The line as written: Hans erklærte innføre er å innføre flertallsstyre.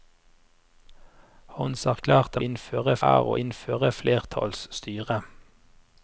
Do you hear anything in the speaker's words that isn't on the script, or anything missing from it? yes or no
no